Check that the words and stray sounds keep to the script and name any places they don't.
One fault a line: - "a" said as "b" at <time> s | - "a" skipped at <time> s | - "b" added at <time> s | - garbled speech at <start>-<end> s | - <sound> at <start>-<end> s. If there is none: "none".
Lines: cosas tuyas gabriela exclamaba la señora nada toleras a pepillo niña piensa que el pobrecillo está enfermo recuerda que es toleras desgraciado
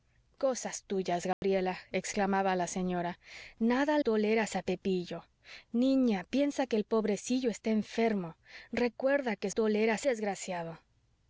- dropout at 1.3-1.4 s